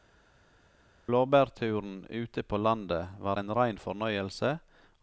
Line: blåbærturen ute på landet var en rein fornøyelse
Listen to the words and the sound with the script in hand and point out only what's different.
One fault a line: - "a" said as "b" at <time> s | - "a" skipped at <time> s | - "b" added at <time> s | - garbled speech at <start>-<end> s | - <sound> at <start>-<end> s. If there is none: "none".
none